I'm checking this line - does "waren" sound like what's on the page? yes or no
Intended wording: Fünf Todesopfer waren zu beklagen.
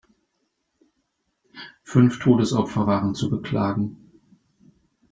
yes